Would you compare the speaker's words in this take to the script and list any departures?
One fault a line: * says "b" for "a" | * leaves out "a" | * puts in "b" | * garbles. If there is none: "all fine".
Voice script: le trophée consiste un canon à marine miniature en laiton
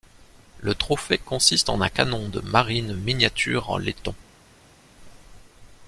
* puts in "en"
* says "de" for "à"